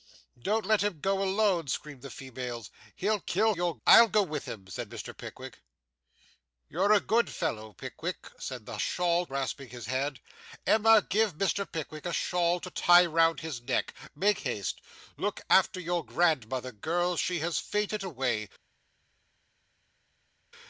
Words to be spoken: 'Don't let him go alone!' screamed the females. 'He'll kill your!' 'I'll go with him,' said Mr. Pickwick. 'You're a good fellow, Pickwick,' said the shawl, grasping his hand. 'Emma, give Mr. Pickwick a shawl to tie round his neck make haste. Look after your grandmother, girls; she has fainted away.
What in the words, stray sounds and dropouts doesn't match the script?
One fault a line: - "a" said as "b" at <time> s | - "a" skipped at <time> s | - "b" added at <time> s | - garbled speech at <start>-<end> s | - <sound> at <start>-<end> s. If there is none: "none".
none